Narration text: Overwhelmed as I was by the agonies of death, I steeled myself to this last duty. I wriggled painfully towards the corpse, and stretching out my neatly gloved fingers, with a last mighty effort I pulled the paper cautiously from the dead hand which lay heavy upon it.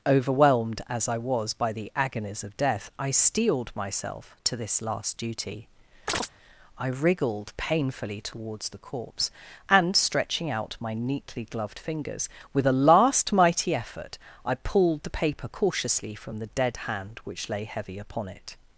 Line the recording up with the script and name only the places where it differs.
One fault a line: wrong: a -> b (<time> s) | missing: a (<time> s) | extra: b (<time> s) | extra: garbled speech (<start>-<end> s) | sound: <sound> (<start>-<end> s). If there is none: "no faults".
sound: chirp (6.1-6.3 s)